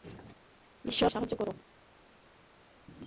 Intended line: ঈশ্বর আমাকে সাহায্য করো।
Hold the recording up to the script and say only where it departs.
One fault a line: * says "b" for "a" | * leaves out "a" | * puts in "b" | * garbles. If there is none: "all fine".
* leaves out "আমাকে"